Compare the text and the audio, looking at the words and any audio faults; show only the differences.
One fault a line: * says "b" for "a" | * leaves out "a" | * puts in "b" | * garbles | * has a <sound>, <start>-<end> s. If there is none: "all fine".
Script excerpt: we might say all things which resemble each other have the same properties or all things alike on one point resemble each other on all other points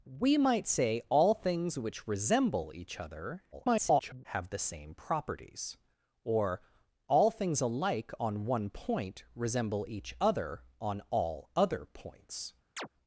* garbles
* has a chirp, 12.8-12.9 s